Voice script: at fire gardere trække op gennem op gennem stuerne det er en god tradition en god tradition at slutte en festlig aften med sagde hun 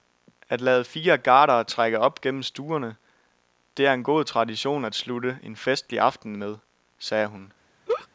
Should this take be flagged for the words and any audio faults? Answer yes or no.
yes